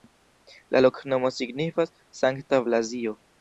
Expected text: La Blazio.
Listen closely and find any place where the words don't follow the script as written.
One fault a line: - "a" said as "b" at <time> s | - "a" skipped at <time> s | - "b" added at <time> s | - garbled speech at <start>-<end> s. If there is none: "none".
- "loknomo signifas Sankta" added at 0.8 s